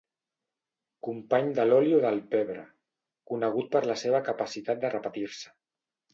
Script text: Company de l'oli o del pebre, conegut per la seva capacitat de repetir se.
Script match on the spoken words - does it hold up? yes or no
yes